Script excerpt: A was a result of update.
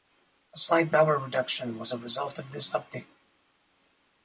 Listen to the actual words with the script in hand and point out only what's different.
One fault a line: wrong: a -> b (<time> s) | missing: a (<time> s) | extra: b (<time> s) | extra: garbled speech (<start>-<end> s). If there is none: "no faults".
extra: slight power reduction (0.6 s)
extra: this (2.5 s)